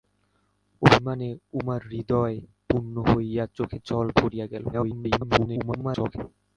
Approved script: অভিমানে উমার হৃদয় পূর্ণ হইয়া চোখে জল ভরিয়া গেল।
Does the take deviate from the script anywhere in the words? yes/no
yes